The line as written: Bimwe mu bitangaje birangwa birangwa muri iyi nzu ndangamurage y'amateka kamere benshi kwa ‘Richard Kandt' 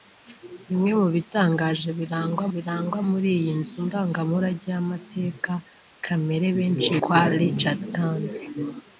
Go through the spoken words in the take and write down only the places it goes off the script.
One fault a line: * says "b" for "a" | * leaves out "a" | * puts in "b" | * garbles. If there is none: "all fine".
all fine